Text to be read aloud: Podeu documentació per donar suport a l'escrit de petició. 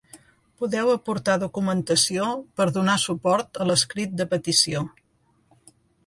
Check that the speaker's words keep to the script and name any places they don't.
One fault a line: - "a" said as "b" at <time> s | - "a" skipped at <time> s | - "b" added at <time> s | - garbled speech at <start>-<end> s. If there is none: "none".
- "aportar" added at 0.9 s